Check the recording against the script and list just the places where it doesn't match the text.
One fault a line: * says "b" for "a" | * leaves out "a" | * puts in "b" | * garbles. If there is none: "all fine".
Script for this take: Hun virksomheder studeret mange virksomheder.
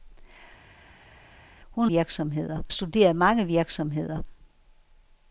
all fine